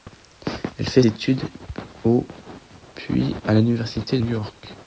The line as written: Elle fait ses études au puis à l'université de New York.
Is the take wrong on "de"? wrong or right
wrong